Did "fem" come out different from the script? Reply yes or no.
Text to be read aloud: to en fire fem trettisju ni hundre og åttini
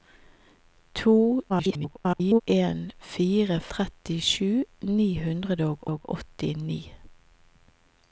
yes